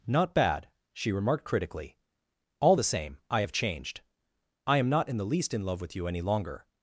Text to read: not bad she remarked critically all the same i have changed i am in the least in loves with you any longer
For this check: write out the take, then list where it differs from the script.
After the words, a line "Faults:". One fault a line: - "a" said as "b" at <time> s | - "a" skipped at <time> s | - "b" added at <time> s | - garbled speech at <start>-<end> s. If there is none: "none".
not bad she remarked critically all the same i have changed i am not in the least in love with you any longer
Faults:
- "not" added at 4.9 s
- "loves" said as "love" at 5.6 s